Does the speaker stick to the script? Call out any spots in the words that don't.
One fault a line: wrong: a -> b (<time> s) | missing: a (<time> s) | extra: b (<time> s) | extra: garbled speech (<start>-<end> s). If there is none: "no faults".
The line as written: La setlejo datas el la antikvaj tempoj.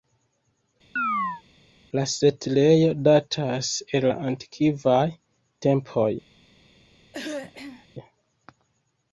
no faults